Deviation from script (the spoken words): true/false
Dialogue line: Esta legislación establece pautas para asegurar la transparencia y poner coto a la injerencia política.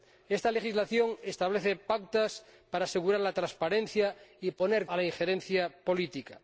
true